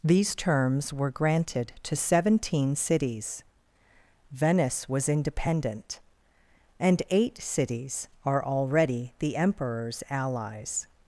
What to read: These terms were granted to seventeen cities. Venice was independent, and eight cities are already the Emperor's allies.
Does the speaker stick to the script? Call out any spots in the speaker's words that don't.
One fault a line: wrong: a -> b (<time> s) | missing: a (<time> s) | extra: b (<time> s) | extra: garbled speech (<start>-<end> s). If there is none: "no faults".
no faults